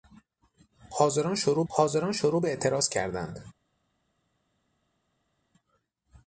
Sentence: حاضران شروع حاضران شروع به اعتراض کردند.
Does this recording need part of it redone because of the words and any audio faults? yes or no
no